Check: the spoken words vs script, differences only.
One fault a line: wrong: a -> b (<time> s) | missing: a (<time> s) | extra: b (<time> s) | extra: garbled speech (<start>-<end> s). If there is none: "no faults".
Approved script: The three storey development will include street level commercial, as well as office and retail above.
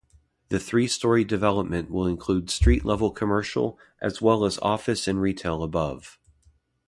no faults